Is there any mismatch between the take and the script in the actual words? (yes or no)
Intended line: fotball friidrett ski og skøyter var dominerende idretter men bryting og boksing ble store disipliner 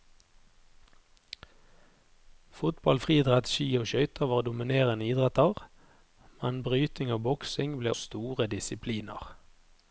no